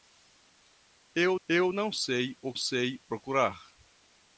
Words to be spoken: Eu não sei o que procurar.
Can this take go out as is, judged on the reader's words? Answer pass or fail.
fail